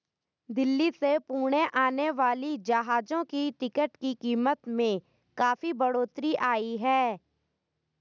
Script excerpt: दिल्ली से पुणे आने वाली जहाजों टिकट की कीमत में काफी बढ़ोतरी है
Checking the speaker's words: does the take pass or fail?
fail